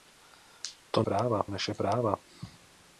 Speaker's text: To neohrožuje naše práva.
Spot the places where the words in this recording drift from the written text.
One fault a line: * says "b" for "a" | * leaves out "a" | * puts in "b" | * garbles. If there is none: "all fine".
* says "práva" for "neohrožuje"